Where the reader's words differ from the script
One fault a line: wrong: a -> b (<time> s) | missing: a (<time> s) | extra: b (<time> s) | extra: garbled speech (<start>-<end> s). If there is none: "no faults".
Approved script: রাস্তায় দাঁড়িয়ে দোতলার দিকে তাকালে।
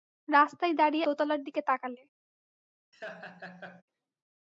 no faults